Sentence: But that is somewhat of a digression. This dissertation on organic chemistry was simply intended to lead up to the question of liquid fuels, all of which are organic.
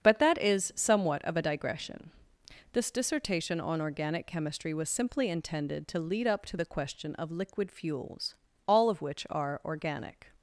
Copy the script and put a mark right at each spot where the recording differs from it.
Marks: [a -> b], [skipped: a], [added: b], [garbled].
But that is somewhat of a digression. This dissertation on organic chemistry was simply intended to lead up to the question of liquid fuels, all of which are organic.